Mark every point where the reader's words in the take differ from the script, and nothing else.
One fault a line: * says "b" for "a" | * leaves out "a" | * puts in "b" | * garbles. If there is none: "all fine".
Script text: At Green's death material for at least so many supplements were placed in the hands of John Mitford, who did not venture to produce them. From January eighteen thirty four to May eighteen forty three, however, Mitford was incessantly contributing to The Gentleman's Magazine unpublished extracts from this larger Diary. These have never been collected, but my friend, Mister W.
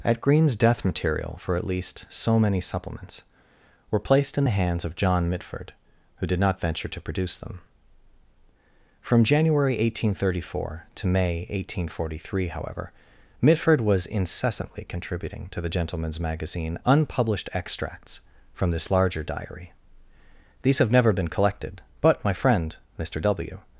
all fine